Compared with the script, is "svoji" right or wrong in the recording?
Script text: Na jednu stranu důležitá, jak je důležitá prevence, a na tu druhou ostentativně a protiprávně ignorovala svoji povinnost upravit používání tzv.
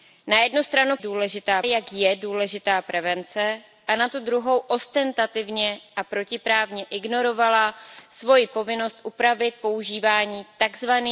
right